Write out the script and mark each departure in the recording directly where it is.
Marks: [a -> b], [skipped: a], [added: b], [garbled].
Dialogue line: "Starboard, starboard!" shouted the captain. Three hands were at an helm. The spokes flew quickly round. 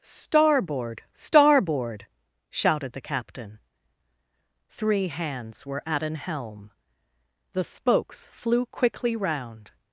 "Starboard, starboard!" shouted the captain. Three hands were at an helm. The spokes flew quickly round.